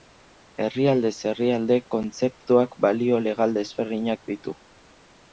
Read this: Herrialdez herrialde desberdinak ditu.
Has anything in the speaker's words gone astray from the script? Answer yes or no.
yes